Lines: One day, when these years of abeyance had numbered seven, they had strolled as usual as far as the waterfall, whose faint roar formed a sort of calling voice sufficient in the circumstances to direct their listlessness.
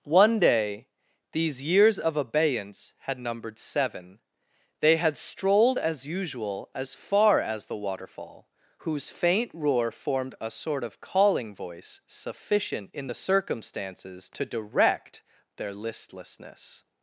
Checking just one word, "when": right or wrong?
wrong